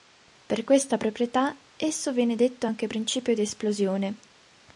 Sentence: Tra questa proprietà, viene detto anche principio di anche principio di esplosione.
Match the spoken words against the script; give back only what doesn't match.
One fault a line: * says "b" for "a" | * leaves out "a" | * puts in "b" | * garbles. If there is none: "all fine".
* says "Per" for "Tra"
* puts in "esso"
* leaves out "anche principio di"